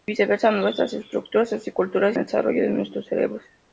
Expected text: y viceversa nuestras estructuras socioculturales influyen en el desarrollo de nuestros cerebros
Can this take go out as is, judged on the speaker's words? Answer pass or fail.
fail